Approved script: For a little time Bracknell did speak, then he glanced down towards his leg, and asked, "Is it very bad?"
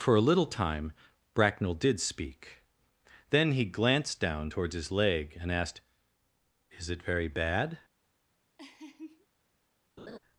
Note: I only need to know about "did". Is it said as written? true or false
true